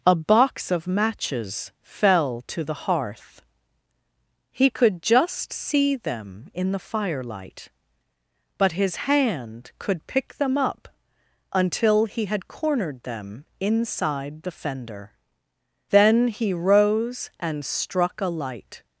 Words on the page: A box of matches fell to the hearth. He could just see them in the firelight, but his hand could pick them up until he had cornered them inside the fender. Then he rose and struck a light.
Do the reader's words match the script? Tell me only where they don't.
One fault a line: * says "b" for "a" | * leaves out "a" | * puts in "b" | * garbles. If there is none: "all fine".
all fine